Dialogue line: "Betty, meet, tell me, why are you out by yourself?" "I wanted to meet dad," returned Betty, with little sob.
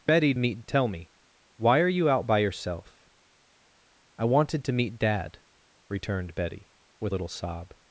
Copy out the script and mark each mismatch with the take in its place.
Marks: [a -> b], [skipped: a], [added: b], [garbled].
"Betty, meet, tell me, why are you out by yourself?" "I wanted to meet dad," returned Betty, with little sob.